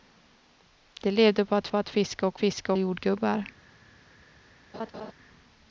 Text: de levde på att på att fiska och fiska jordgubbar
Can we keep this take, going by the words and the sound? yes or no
no